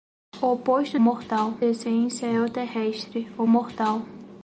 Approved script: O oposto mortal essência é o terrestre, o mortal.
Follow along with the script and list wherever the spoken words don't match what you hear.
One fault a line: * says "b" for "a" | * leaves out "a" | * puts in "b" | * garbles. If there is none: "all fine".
all fine